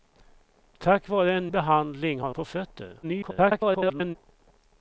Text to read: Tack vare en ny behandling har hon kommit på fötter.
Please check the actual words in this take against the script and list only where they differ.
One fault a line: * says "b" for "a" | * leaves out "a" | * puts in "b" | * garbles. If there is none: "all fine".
* leaves out "ny"
* leaves out "hon kommit"
* garbles